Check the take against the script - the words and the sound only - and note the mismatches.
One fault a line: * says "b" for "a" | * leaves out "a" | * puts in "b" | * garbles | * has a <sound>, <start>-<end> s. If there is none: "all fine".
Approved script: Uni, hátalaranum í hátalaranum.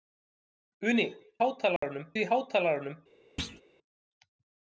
* has a dropout, 1.8-1.8 s
* has a thud, 3.4-3.6 s